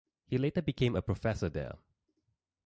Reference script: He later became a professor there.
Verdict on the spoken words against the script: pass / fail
pass